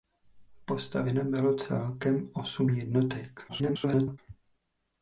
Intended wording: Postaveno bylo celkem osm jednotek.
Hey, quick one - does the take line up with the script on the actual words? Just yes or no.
no